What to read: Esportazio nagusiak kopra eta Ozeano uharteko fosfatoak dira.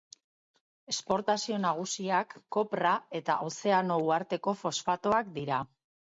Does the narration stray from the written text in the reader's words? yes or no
no